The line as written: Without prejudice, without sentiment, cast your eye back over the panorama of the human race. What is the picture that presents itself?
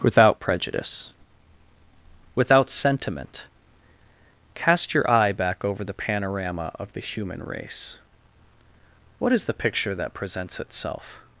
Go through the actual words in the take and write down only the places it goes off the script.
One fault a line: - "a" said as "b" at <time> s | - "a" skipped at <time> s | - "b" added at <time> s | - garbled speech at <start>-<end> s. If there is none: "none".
none